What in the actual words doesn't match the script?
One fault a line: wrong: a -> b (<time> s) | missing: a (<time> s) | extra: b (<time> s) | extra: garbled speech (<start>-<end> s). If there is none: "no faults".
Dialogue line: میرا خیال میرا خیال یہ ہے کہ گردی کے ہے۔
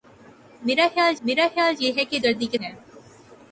no faults